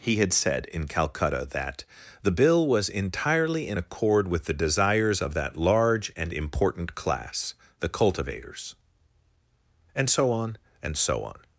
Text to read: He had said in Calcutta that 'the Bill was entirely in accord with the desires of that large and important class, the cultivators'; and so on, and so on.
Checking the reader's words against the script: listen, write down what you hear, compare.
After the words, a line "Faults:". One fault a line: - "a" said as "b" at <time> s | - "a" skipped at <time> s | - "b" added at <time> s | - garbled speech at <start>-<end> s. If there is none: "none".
He had said in Calcutta that 'the Bill was entirely in accord with the desires of that large and important class, the cultivators'; and so on, and so on.
Faults:
none